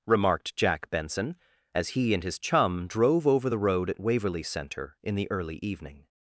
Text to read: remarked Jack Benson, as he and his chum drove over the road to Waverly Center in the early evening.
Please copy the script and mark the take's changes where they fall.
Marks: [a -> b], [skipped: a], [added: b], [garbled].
remarked Jack Benson, as he and his chum drove over the road [to -> at] Waverly Center in the early evening.